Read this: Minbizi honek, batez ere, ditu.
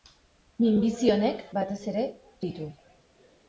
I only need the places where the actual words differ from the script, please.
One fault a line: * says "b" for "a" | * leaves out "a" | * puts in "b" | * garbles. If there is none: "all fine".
all fine